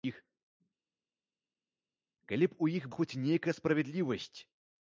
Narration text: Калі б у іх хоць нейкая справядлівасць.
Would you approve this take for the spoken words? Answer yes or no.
yes